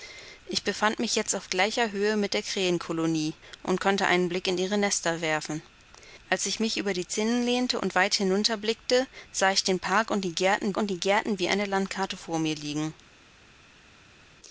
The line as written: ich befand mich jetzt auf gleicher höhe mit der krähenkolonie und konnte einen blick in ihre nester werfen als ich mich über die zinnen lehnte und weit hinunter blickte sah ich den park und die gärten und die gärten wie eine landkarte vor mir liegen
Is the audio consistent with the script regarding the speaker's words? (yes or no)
yes